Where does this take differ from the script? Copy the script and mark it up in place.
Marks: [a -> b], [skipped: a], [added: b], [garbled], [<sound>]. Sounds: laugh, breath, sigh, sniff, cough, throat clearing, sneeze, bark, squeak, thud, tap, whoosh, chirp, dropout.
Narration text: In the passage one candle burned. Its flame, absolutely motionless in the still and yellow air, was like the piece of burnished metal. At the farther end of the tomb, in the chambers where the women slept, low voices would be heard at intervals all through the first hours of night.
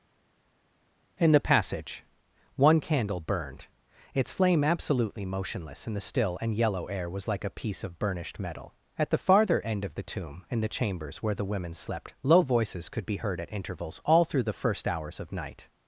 In the passage one candle burned. Its flame, absolutely motionless in the still and yellow air, was like [the -> a] piece of burnished metal. At the farther end of the tomb, in the chambers where the women slept, low voices [would -> could] be heard at intervals all through the first hours of night.